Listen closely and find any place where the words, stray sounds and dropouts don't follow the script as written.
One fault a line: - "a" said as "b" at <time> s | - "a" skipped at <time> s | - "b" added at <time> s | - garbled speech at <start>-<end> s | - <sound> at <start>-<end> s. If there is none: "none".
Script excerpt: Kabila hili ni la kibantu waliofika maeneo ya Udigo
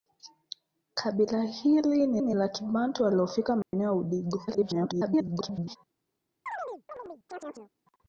- "ni" added at 2.2 s
- dropout at 3.6-3.7 s
- garbled speech at 4.5-5.8 s
- chirp at 6.5-7.7 s